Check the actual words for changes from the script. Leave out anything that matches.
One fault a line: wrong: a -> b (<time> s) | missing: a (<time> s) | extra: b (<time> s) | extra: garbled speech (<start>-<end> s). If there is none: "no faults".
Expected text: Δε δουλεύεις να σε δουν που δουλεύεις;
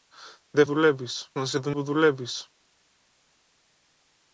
no faults